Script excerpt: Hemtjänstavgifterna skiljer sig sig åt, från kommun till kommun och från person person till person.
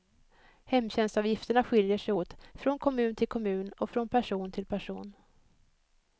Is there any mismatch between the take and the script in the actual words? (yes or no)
yes